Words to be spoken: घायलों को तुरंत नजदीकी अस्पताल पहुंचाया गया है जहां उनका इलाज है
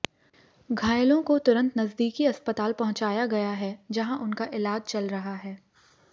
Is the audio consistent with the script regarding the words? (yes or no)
no